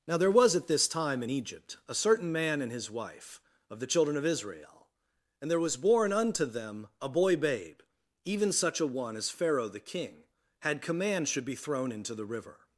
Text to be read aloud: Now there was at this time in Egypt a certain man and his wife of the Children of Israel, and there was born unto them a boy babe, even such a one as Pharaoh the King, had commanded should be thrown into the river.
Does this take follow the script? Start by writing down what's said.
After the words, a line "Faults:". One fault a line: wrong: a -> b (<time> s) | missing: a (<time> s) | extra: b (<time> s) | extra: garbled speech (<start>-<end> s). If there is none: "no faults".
Now there was at this time in Egypt a certain man and his wife of the Children of Israel, and there was born unto them a boy babe, even such a one as Pharaoh the King, had command should be thrown into the river.
Faults:
wrong: commanded -> command (10.8 s)